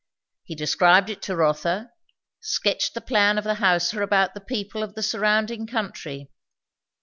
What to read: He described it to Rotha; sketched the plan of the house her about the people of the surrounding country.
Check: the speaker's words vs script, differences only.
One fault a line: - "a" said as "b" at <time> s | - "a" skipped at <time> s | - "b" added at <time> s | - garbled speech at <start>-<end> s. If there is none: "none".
none